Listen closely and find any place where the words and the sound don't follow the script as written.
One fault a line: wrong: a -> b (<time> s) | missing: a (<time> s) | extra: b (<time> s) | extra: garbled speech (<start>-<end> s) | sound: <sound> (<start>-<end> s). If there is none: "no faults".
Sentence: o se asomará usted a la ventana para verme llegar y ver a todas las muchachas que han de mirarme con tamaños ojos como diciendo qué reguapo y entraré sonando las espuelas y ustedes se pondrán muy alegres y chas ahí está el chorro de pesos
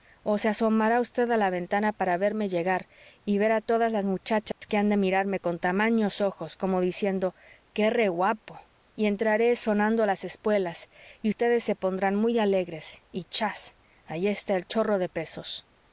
sound: dropout (4.5-4.6 s)